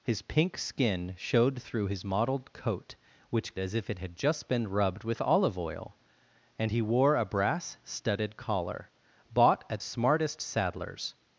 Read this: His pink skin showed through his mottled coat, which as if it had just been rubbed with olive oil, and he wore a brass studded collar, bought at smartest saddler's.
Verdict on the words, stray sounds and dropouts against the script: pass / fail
pass